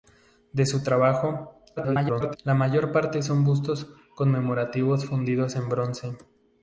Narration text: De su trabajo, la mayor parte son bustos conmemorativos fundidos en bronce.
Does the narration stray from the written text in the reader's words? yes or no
yes